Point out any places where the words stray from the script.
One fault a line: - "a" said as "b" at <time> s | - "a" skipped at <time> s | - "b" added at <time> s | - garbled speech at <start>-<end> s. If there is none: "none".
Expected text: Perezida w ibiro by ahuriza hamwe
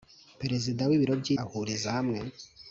none